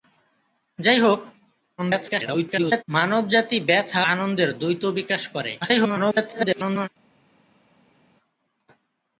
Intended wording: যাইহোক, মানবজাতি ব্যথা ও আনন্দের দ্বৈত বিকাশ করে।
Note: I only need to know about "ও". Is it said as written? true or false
false